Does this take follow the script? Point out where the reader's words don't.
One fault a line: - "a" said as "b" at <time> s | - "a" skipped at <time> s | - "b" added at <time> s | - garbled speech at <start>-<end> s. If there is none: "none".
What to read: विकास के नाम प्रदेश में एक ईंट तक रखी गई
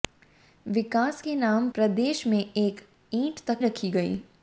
none